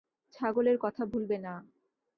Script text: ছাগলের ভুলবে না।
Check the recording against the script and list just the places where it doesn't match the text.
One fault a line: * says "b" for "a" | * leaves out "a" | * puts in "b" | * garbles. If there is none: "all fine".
* puts in "কথা"